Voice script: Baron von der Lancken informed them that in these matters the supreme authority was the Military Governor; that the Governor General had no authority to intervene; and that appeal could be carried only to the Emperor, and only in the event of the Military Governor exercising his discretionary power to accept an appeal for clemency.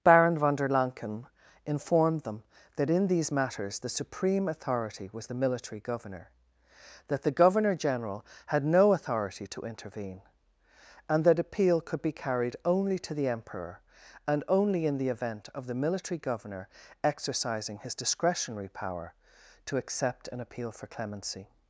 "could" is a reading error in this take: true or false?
false